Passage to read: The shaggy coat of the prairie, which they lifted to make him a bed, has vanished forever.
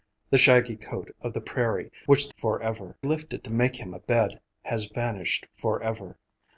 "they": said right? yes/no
no